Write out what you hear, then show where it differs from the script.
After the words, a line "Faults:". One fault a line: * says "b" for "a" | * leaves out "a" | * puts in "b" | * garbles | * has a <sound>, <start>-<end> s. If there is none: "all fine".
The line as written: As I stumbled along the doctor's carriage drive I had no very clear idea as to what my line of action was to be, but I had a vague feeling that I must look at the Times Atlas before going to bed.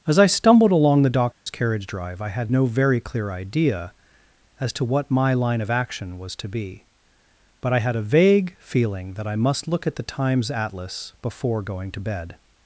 As I stumbled along the doctor's carriage drive I had no very clear idea as to what my line of action was to be, but I had a vague feeling that I must look at the Times Atlas before going to bed.
Faults:
* has a dropout, 1.3-1.5 s